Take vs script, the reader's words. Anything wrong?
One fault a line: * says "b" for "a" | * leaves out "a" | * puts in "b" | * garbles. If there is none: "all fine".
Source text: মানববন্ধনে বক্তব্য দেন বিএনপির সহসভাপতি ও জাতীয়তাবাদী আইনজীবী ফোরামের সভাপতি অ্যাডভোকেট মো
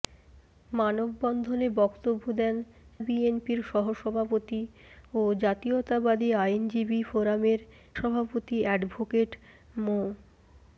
all fine